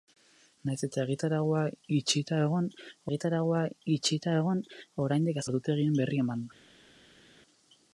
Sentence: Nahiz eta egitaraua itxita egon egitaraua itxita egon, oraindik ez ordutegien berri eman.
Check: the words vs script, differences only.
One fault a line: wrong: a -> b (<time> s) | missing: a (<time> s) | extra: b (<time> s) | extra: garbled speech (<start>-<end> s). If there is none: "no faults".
no faults